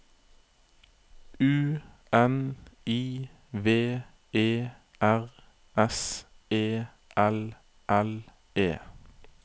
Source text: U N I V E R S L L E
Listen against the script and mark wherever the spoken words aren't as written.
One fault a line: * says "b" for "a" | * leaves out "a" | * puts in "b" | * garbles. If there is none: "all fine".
* puts in "E"